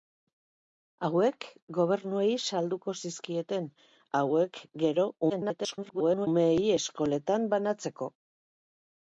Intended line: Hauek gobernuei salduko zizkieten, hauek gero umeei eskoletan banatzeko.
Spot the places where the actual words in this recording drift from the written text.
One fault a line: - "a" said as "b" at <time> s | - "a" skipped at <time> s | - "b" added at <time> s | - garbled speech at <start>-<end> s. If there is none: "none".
- garbled speech at 5.3-6.3 s